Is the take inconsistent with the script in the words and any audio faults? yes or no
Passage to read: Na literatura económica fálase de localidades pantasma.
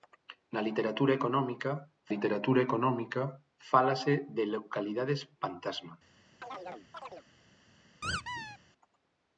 yes